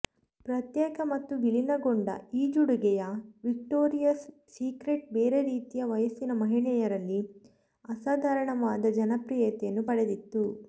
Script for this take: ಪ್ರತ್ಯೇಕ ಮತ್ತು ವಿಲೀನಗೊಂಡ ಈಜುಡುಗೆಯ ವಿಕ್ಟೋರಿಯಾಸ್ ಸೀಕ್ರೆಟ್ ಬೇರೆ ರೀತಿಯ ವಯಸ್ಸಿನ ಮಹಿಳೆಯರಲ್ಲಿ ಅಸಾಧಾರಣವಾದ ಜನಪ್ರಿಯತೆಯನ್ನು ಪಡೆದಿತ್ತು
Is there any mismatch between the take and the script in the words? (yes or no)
no